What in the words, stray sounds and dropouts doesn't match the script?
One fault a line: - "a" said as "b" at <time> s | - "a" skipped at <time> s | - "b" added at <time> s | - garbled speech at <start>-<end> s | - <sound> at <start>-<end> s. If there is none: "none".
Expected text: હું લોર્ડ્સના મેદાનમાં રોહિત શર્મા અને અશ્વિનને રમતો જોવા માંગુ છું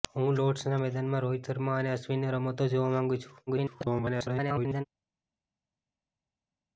- garbled speech at 3.5-4.8 s